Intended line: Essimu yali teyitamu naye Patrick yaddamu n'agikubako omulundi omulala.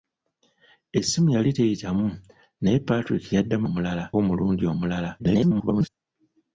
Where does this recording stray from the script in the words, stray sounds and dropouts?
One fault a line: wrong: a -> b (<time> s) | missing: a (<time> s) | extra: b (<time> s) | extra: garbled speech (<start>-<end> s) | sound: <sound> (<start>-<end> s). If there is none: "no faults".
wrong: n'agikubako -> omulala (3.7 s)
extra: garbled speech (5.2-5.9 s)